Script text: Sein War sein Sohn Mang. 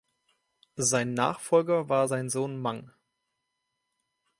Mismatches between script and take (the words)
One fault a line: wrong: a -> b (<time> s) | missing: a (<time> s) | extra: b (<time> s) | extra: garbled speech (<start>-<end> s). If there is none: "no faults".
extra: Nachfolger (1.1 s)